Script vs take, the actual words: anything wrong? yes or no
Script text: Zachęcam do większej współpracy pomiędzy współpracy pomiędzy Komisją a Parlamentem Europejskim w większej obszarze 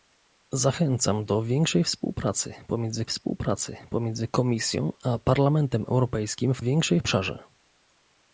no